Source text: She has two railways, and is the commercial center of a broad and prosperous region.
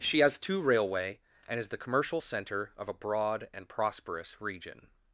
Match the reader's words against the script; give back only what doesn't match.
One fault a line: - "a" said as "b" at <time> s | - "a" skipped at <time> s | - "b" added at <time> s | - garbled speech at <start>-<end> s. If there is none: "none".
- "railways" said as "railway" at 0.6 s